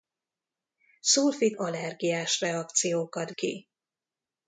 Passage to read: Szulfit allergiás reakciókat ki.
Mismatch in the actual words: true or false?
false